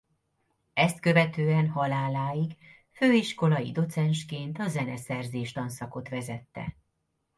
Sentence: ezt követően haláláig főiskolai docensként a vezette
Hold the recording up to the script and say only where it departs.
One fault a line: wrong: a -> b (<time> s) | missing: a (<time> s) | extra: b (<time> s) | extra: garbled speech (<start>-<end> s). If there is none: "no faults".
extra: zeneszerzés tanszakot (4.7 s)